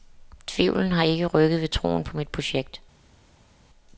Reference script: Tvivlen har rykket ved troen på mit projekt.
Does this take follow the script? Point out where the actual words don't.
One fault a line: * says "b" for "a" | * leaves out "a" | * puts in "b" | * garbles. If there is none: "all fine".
* puts in "ikke"